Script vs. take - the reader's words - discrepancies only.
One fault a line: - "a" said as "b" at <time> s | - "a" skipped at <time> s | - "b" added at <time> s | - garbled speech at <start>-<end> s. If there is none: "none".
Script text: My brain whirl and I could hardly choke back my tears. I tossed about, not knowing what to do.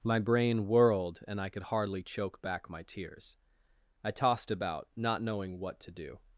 - "whirl" said as "whirled" at 0.7 s